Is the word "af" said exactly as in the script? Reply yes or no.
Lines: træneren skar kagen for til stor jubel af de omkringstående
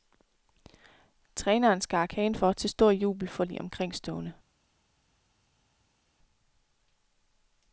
no